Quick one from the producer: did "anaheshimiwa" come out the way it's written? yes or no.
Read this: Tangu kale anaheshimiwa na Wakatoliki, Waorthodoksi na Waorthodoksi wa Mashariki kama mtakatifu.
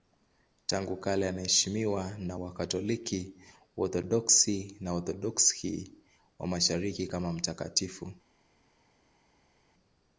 yes